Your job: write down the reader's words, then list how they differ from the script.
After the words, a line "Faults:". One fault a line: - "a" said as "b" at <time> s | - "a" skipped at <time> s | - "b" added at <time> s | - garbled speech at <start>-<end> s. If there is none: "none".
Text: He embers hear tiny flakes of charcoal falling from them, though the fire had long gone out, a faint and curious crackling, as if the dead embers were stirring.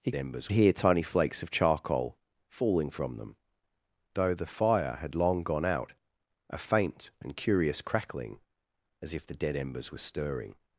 He embers hear tiny flakes of charcoal falling from them, though the fire had long gone out, a faint and curious crackling, as if the dead embers were stirring.
Faults:
none